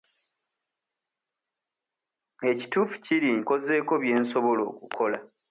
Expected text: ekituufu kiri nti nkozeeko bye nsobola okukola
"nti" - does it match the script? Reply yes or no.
no